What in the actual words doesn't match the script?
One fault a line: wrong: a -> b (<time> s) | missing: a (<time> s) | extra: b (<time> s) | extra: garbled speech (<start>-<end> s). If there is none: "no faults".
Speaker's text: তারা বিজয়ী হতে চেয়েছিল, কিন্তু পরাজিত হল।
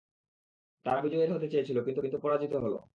extra: কিন্তু (2.0 s)